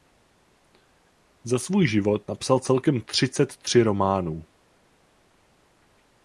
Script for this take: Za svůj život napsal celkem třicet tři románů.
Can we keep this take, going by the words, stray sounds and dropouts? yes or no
yes